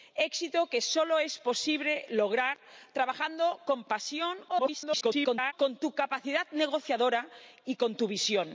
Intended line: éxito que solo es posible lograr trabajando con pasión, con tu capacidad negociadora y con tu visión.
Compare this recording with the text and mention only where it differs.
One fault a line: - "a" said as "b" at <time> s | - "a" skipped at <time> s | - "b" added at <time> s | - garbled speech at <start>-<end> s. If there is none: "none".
- garbled speech at 4.5-5.5 s